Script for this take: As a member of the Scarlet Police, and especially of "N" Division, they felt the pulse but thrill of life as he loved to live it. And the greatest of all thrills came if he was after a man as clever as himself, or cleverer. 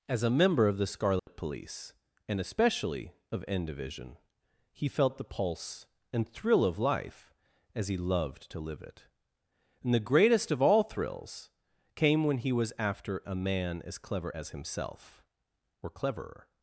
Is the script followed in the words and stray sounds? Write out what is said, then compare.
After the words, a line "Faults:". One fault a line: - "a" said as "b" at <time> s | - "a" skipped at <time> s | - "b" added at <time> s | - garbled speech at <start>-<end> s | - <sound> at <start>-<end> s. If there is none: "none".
As a member of the Scarlet Police, and especially of "N" Division, he felt the pulse and thrill of life as he loved to live it. And the greatest of all thrills came when he was after a man as clever as himself, or cleverer.
Faults:
- dropout at 1.2-1.3 s
- "they" said as "he" at 4.7 s
- "but" said as "and" at 6.1 s
- "if" said as "when" at 12.2 s